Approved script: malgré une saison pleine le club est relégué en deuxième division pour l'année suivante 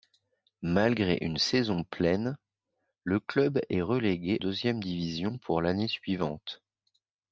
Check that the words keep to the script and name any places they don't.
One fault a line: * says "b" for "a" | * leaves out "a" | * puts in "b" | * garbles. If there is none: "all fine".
* leaves out "en"